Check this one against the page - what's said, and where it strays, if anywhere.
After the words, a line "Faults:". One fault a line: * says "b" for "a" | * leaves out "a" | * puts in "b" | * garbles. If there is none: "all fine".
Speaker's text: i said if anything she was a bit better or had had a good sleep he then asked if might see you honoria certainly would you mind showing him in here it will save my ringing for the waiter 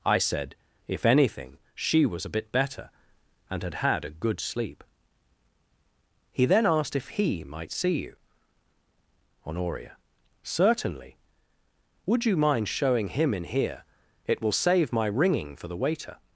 i said if anything she was a bit better and had had a good sleep he then asked if he might see you honoria certainly would you mind showing him in here it will save my ringing for the waiter
Faults:
* says "and" for "or"
* puts in "he"